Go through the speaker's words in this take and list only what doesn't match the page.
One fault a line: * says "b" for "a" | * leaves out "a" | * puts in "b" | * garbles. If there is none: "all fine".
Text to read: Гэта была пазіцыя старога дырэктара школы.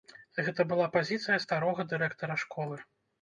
all fine